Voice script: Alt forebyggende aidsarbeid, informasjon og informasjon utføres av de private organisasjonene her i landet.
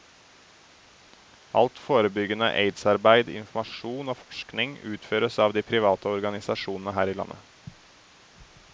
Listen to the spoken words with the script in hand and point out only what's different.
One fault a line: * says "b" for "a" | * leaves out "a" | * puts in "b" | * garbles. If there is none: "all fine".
* says "forskning" for "informasjon"